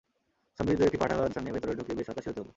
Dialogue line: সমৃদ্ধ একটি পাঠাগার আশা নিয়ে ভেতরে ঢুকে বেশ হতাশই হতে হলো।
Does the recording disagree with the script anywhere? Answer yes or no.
no